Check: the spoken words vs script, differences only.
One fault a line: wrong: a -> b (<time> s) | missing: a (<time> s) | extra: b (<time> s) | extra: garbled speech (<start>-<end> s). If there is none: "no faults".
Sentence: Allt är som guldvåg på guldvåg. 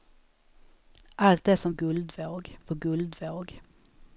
no faults